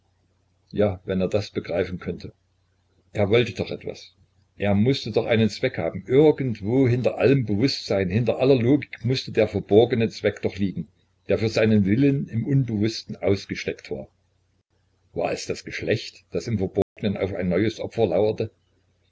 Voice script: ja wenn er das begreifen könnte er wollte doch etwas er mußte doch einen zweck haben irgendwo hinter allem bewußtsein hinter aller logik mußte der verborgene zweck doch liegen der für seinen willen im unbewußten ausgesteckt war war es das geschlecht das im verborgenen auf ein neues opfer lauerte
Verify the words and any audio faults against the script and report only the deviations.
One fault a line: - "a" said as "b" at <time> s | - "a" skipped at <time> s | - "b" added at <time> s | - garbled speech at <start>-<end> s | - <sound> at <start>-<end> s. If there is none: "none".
- dropout at 16.8-17.0 s